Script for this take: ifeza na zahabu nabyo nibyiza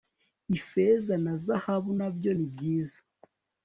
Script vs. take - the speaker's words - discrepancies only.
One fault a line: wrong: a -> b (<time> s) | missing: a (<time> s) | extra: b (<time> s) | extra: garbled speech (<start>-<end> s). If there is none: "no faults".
no faults